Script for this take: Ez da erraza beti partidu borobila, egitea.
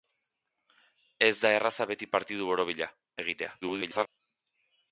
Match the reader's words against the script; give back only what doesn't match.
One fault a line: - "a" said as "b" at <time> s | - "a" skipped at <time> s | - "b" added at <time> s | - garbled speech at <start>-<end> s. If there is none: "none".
- garbled speech at 3.6-4.1 s